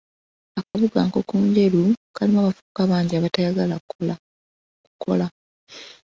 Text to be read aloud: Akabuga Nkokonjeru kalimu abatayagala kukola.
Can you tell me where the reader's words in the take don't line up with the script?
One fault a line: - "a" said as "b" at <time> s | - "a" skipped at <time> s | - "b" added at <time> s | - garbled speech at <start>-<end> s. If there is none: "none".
- "abavubuka bangi" added at 2.4 s